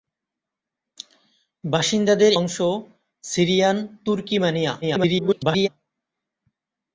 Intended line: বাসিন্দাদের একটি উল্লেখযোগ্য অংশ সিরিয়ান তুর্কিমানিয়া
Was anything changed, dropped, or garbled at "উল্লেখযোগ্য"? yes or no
yes